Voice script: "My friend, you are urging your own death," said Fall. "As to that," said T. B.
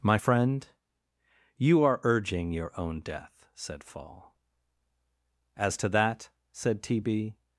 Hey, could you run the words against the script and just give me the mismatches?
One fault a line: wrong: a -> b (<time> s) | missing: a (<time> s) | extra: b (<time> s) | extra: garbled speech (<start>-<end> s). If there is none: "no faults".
no faults